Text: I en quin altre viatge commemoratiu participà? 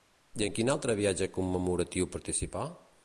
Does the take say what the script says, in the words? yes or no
yes